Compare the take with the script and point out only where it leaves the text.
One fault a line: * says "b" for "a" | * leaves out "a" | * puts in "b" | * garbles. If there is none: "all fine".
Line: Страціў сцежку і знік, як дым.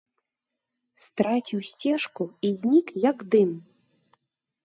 all fine